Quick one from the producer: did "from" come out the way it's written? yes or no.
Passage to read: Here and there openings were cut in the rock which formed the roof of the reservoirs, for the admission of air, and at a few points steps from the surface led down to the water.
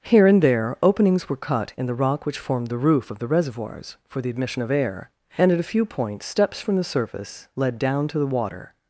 yes